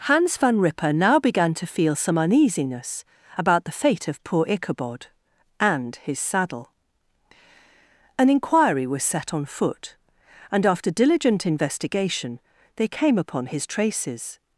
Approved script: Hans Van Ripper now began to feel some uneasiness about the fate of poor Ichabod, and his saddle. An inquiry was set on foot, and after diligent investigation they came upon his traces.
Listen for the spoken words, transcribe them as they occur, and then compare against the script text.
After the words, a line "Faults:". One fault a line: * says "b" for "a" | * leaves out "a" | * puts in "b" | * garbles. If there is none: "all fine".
Hans Van Ripper now began to feel some uneasiness about the fate of poor Ichabod, and his saddle. An inquiry was set on foot, and after diligent investigation they came upon his traces.
Faults:
all fine